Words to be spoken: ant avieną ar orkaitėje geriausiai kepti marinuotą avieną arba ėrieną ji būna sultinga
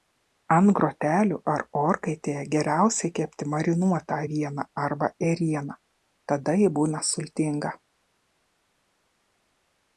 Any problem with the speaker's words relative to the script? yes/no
yes